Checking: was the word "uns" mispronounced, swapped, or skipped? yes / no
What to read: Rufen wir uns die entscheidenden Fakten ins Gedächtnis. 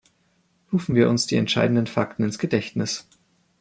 no